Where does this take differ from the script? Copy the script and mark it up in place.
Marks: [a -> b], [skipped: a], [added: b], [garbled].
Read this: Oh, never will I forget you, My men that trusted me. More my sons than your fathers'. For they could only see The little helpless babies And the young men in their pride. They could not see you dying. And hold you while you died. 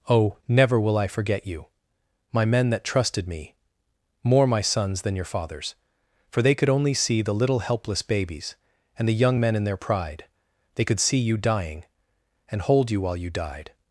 Oh, never will I forget you, My men that trusted me. More my sons than your fathers'. For they could only see The little helpless babies And the young men in their pride. They could [skipped: not] see you dying. And hold you while you died.